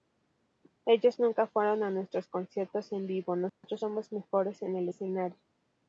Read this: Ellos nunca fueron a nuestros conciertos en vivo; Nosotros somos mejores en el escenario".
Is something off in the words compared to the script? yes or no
no